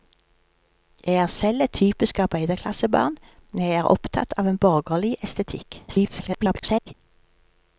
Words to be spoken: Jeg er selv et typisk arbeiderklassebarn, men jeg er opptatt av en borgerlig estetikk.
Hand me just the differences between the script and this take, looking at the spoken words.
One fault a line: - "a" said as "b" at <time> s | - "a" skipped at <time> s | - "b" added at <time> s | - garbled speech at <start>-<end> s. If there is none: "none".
- garbled speech at 5.9-6.9 s